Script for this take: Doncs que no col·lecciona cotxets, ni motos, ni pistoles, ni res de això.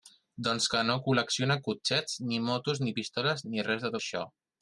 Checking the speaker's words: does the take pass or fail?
pass